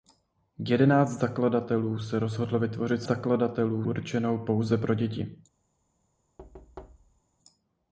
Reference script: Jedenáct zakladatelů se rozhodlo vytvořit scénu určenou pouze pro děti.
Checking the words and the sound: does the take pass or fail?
fail